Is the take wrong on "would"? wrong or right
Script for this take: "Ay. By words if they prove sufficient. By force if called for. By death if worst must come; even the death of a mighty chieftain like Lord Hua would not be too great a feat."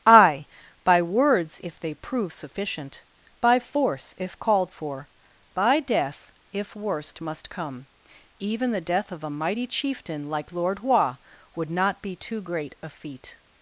right